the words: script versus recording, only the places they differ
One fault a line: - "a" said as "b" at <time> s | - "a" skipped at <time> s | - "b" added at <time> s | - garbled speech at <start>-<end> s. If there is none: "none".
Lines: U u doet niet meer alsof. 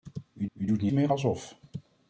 none